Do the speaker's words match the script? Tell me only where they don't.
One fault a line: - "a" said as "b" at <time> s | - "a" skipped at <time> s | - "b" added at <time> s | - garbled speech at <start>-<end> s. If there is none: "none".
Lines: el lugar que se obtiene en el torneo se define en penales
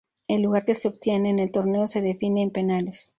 none